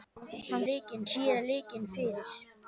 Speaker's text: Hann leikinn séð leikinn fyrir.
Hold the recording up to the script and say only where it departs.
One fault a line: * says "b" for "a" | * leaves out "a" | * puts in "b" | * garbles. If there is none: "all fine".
all fine